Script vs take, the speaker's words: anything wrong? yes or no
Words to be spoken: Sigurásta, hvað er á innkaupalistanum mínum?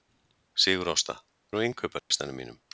yes